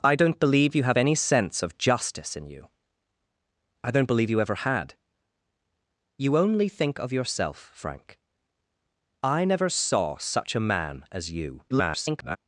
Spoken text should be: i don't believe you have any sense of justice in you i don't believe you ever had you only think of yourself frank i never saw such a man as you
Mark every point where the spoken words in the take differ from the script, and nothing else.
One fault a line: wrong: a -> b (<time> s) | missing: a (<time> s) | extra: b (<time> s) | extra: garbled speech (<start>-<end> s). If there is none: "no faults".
extra: garbled speech (11.7-12.4 s)